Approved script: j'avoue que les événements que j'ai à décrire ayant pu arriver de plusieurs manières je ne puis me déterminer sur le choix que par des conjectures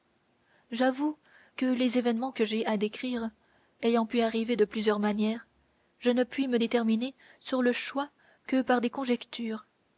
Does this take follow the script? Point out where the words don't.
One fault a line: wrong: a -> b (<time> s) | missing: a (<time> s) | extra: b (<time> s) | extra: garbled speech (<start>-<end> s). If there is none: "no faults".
no faults